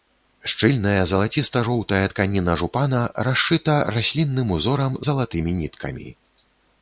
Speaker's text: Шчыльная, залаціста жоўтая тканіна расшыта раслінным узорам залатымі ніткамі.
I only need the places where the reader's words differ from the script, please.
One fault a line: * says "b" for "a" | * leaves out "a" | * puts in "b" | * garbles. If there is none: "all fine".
* puts in "жупана"